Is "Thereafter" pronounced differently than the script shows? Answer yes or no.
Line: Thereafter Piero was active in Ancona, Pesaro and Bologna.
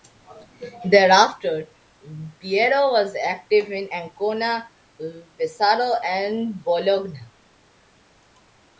no